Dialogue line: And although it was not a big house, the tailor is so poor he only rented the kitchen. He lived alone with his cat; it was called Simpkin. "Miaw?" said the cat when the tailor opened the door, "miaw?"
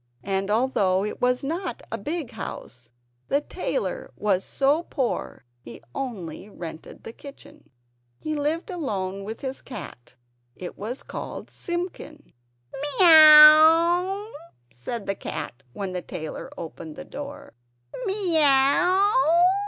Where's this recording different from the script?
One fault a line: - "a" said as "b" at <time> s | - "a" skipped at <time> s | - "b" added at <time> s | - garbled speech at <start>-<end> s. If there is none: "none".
- "is" said as "was" at 4.2 s